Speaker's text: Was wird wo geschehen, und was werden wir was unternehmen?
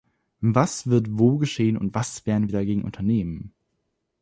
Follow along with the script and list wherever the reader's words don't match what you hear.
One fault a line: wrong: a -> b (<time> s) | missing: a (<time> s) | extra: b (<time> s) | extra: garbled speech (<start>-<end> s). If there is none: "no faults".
wrong: was -> dagegen (2.5 s)